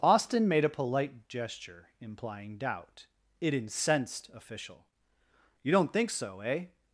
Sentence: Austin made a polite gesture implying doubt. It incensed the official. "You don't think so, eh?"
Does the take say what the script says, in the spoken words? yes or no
no